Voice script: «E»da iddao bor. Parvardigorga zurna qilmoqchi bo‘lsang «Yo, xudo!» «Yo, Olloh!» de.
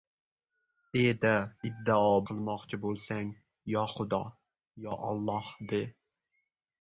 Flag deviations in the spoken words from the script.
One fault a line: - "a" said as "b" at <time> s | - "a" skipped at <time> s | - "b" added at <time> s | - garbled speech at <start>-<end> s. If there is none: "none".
- "bor Parvardigorga zurna" skipped at 2.1 s